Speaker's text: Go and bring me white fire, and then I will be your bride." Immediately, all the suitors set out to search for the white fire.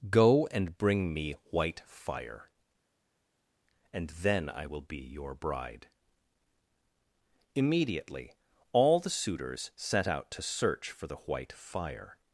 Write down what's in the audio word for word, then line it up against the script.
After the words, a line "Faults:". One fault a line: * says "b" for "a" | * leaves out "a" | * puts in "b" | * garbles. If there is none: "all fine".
Go and bring me white fire, and then I will be your bride." Immediately, all the suitors set out to search for the white fire.
Faults:
all fine